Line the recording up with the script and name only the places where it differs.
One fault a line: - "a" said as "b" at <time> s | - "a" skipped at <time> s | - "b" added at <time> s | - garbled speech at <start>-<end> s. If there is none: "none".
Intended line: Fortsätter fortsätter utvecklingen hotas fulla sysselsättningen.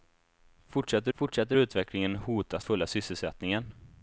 none